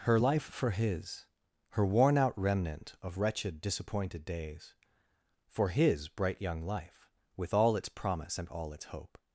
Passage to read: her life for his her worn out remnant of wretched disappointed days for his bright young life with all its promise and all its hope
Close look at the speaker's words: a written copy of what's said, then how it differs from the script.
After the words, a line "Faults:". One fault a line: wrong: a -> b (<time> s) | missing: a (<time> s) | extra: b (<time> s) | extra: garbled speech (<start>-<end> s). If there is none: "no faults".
her life for his her worn out remnant of wretched disappointed days for his bright young life with all its promise and all its hope
Faults:
no faults